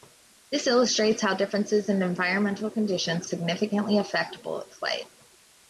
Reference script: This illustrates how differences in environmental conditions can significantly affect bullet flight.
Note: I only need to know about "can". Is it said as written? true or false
false